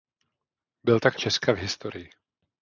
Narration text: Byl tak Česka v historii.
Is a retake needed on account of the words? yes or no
no